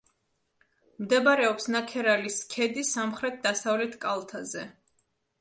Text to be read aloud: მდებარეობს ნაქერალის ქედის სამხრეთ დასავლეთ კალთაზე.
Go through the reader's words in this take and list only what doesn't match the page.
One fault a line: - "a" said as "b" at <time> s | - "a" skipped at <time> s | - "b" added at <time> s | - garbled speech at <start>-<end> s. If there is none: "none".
none